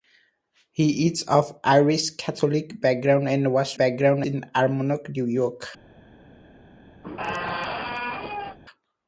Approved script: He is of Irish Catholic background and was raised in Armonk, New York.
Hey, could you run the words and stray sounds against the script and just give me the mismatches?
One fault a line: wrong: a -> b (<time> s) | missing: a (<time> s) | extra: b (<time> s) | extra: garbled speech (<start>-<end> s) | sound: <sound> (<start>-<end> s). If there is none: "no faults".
wrong: raised -> background (3.8 s)
sound: squeak (7.0-8.6 s)